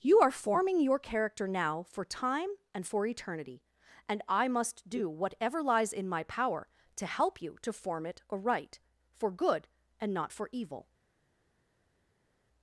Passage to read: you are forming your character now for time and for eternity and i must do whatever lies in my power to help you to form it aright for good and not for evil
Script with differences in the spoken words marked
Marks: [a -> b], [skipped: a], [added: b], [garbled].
you are forming your character now for time and for eternity and i must do whatever lies in my power to help you to form it aright for good and not for evil